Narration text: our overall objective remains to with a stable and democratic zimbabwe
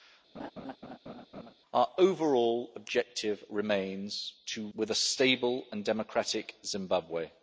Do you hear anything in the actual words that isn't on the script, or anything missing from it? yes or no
no